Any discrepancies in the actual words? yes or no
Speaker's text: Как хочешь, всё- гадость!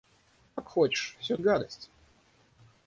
no